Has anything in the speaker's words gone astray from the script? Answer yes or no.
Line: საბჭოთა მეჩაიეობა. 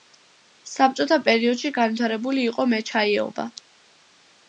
yes